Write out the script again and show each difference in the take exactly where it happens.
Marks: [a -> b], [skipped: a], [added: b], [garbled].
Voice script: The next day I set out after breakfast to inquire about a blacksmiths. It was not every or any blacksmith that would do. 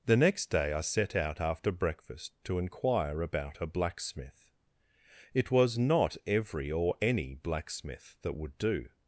The next day I set out after breakfast to inquire about a [blacksmiths. -> blacksmith] It was not every or any blacksmith that would do.